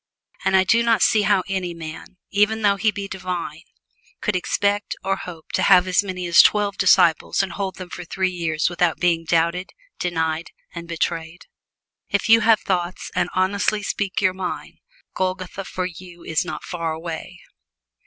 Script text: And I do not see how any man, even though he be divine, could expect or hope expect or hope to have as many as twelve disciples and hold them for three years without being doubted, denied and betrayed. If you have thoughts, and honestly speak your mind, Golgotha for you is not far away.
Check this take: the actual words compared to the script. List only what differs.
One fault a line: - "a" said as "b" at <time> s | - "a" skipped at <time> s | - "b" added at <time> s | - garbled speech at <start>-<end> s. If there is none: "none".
- "expect or hope" skipped at 5.5 s